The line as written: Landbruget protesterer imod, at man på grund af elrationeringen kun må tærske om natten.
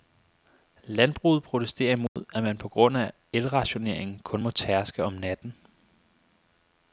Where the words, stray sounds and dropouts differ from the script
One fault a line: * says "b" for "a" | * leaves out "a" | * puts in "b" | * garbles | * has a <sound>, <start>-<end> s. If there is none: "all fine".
* has a dropout, 2.1-2.2 s